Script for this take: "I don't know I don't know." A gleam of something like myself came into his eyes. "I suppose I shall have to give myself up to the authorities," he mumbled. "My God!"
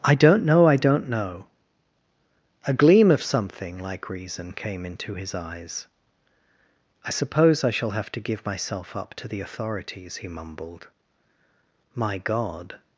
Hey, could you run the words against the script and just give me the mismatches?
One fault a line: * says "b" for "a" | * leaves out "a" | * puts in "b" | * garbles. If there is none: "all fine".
* says "reason" for "myself"